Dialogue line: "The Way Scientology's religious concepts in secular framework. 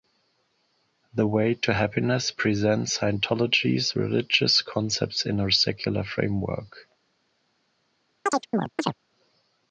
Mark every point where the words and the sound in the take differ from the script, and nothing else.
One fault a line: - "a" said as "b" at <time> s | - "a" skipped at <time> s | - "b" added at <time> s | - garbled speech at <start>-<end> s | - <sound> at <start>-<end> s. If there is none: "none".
- "to Happiness presents" added at 1.5 s
- "a" added at 5.4 s
- chirp at 8.3-8.9 s